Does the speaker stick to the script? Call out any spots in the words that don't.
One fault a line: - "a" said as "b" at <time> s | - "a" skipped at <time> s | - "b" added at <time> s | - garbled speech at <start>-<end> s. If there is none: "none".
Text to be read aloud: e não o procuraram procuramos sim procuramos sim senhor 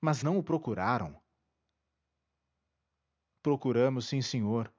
- "e" said as "mas" at 0.0 s
- "procuramos sim" skipped at 4.2 s